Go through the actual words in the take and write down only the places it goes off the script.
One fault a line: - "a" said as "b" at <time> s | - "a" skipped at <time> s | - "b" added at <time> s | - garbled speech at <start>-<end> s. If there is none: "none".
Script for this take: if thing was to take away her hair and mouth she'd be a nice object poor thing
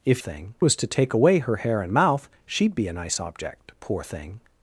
none